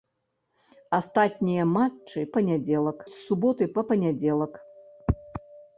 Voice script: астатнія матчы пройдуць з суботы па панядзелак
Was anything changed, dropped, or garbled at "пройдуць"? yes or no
yes